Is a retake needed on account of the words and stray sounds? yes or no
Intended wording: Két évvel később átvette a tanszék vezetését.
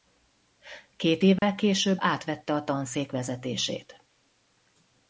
yes